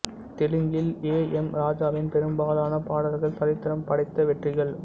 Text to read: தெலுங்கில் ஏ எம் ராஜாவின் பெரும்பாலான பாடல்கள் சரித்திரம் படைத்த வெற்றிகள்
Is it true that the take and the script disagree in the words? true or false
false